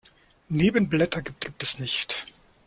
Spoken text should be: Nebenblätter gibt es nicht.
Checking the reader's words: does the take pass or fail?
fail